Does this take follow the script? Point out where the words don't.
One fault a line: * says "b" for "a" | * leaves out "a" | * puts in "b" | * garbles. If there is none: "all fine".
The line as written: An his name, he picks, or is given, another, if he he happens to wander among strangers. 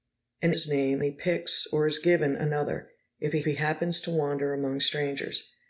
all fine